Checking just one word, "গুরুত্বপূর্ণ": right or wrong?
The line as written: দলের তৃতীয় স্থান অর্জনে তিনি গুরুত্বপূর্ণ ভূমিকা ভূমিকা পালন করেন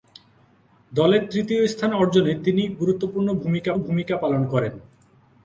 right